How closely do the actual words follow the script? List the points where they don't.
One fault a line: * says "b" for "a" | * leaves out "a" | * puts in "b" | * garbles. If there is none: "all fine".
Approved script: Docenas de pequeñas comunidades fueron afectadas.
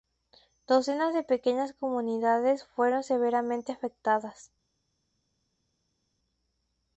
* puts in "severamente"